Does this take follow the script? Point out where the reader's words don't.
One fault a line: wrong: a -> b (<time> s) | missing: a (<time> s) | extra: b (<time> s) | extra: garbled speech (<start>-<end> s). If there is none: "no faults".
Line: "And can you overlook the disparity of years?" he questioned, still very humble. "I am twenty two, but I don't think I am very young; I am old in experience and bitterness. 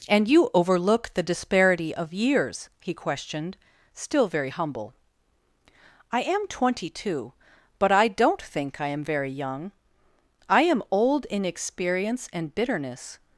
missing: can (0.3 s)